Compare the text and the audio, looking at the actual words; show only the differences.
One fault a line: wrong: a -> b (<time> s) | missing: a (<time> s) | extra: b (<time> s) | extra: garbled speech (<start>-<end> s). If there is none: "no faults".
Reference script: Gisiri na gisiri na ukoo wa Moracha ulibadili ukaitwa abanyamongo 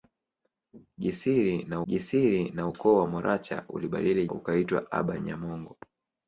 no faults